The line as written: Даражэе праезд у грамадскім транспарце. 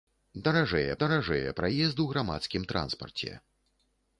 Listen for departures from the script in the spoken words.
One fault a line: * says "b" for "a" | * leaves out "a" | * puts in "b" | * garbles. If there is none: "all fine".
* puts in "даражэе"